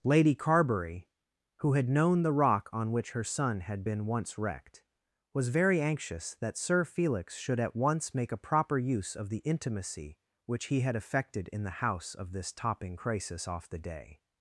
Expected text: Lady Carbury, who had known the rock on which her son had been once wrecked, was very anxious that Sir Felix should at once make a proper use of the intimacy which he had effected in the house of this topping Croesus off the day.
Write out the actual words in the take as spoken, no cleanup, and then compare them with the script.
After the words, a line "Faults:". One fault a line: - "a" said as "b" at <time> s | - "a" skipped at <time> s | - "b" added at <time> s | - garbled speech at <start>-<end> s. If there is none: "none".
Lady Carbury, who had known the rock on which her son had been once wrecked, was very anxious that Sir Felix should at once make a proper use of the intimacy which he had effected in the house of this topping Croesus off the day.
Faults:
none